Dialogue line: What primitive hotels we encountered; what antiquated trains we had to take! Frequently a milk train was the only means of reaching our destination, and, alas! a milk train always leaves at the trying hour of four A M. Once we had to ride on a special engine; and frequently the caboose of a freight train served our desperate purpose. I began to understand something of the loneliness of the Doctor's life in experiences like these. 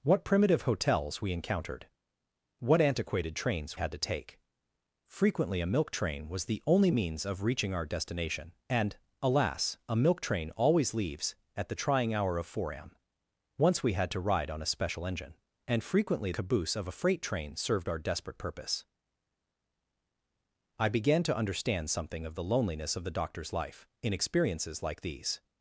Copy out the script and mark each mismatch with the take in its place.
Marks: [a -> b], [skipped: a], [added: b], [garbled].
What primitive hotels we encountered; what antiquated trains [skipped: we] had to take! Frequently a milk train was the only means of reaching our destination, and, alas! a milk train always leaves at the trying hour of four A M. Once we had to ride on a special engine; and frequently [skipped: the] caboose of a freight train served our desperate purpose. I began to understand something of the loneliness of the Doctor's life in experiences like these.